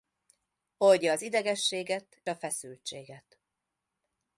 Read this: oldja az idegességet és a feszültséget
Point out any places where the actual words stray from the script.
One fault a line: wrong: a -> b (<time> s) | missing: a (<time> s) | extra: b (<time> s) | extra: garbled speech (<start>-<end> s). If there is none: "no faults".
missing: és (2.2 s)